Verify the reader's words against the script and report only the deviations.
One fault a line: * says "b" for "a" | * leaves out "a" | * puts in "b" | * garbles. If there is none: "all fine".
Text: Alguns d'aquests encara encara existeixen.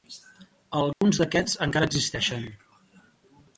* leaves out "encara"